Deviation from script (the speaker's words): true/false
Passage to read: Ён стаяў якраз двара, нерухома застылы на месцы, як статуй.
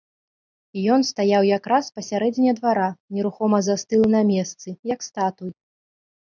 true